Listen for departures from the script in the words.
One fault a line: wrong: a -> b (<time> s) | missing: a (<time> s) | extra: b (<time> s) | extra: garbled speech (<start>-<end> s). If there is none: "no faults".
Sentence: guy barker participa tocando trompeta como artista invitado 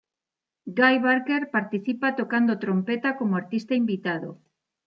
no faults